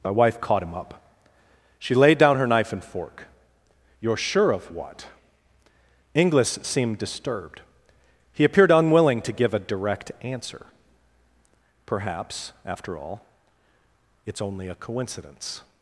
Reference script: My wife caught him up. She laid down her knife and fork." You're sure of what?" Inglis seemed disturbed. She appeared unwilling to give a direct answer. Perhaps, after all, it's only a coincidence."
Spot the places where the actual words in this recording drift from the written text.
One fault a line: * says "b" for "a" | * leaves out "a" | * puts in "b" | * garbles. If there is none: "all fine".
* says "He" for "She"